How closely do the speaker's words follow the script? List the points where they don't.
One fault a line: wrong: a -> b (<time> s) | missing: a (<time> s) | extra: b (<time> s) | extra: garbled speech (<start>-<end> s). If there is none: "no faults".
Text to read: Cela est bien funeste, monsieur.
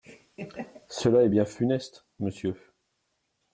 no faults